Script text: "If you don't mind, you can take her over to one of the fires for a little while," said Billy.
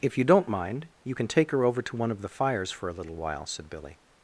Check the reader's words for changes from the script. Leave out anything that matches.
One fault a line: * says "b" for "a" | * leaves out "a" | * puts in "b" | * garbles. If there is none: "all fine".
all fine